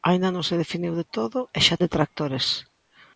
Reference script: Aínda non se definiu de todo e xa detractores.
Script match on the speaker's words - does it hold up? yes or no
yes